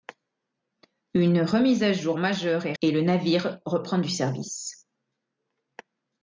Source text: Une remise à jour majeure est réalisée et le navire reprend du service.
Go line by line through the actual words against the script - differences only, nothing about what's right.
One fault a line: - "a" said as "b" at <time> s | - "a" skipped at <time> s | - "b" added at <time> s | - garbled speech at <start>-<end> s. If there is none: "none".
- "réalisée" skipped at 2.7 s